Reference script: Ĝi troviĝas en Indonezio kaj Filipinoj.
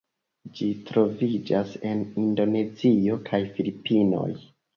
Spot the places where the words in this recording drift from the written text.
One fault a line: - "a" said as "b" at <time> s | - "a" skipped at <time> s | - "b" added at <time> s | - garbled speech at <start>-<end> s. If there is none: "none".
none